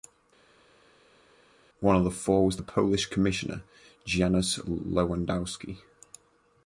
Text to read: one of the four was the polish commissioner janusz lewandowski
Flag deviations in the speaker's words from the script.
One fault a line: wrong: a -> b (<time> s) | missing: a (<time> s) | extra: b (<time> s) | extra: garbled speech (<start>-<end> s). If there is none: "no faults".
no faults